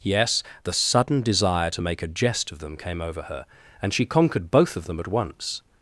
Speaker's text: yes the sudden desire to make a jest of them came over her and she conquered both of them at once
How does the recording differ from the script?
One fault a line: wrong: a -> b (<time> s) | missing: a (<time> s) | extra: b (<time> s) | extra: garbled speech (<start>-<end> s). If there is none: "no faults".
no faults